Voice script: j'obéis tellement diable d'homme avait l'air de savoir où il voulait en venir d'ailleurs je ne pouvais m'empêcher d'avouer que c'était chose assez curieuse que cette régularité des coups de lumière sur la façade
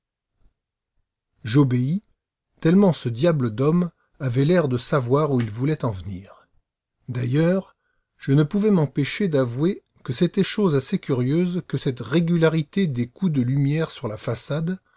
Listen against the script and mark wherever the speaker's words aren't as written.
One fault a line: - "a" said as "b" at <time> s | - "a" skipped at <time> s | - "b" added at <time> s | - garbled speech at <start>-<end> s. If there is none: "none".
- "ce" added at 2.9 s